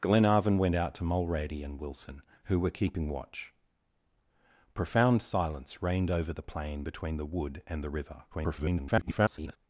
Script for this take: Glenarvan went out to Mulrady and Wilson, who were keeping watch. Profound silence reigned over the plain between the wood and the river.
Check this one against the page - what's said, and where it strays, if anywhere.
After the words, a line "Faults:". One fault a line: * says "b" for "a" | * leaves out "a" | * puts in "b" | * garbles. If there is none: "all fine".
Glenarvan went out to Mulrady and Wilson, who were keeping watch. Profound silence reigned over the plain between the wood and the river. [garbled]
Faults:
* garbles